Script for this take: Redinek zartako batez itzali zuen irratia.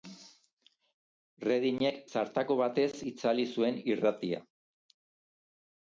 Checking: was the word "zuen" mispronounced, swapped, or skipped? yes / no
no